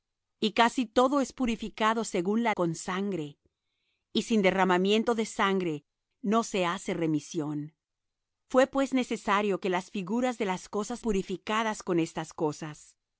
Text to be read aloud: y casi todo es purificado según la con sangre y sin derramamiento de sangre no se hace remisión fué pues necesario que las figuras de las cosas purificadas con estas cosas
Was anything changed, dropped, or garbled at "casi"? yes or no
no